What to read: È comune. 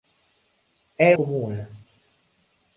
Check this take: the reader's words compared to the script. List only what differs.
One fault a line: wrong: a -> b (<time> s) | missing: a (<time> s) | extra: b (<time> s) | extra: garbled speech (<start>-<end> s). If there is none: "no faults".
no faults